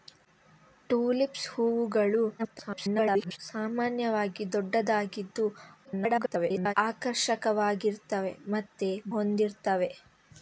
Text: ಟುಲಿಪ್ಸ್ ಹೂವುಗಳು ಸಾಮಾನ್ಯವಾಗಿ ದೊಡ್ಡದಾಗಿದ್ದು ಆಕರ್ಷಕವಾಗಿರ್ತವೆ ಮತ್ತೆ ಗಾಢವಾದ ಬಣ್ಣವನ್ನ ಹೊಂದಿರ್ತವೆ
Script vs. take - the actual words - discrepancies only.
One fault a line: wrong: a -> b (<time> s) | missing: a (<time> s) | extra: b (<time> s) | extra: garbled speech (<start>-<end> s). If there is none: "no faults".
extra: garbled speech (2.4-3.4 s)
extra: garbled speech (5.9-6.7 s)
missing: ಗಾಢವಾದ ಬಣ್ಣವನ್ನ (8.9 s)